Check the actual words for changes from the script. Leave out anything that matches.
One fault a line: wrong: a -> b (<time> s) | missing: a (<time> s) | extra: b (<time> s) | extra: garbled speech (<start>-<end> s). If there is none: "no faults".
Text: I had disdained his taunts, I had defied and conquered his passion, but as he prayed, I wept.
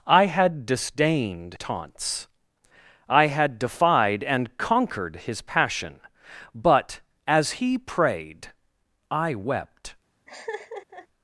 missing: his (1.5 s)